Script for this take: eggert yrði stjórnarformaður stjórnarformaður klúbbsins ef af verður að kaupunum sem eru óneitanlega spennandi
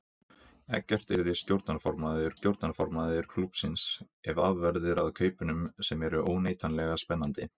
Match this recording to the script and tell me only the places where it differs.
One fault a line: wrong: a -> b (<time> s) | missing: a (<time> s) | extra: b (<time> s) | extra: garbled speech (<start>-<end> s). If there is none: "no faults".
no faults